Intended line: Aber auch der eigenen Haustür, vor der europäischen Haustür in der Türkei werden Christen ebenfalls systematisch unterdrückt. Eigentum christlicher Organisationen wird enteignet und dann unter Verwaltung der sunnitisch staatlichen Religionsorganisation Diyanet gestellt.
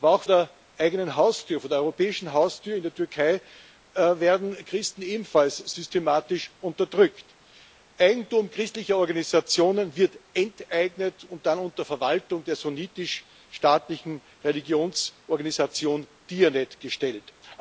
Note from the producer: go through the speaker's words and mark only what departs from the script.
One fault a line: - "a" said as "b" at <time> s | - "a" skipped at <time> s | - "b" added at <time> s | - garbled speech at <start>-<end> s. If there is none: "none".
none